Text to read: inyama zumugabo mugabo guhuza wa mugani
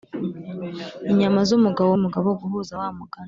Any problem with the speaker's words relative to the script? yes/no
no